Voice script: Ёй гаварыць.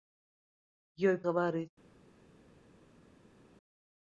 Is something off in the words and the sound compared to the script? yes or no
no